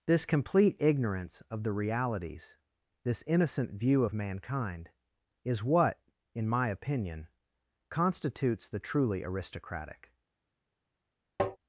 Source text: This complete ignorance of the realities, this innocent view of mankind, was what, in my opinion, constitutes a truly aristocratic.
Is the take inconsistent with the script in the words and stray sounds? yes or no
yes